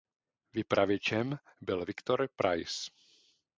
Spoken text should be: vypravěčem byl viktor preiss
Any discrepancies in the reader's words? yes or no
no